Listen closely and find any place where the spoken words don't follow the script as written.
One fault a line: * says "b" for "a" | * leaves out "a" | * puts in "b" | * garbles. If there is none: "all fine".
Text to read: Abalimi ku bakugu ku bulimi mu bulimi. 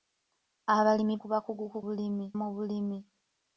all fine